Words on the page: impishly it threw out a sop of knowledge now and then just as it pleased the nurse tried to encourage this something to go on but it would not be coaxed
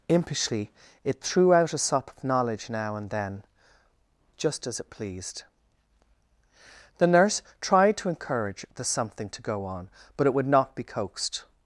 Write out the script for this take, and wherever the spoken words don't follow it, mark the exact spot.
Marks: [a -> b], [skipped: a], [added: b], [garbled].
impishly it threw out a sop of knowledge now and then just as it pleased the nurse tried to encourage [this -> the] something to go on but it would not be coaxed